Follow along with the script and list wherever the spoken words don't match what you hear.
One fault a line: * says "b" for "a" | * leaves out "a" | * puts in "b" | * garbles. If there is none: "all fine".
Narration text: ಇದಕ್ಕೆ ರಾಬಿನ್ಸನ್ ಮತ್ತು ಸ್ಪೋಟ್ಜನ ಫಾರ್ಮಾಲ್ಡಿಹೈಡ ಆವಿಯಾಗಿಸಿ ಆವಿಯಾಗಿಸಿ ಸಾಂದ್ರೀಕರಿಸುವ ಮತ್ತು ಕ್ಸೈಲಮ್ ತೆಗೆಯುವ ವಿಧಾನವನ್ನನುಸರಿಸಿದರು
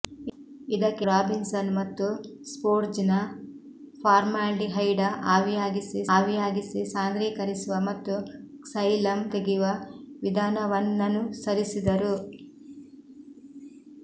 all fine